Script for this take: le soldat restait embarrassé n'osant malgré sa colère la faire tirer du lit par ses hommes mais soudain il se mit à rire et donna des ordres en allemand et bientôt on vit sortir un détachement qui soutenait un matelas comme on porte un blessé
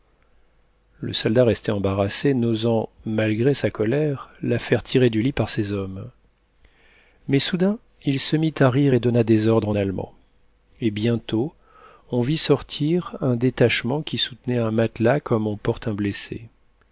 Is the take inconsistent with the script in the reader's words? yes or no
no